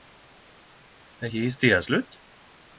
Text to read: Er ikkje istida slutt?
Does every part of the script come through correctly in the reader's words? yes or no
yes